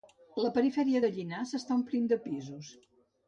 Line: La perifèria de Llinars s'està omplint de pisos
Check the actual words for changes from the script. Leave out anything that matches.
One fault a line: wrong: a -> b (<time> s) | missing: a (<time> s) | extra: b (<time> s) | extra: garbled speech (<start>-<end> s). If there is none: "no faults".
no faults